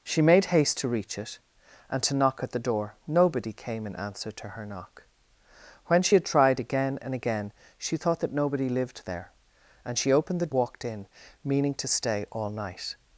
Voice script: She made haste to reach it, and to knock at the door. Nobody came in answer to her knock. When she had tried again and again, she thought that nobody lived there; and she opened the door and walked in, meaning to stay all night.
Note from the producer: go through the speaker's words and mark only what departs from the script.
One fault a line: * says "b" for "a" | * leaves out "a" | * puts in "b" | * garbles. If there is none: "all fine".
* leaves out "door and"